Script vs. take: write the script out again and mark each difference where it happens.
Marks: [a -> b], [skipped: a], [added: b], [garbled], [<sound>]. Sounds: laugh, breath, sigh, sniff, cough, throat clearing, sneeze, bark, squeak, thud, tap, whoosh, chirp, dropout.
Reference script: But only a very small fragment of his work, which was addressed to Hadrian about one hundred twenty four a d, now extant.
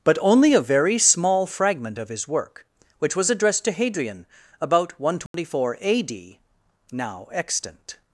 But only a very small fragment of his work, which was addressed to Hadrian about one hundred twenty [dropout] four a d, now extant.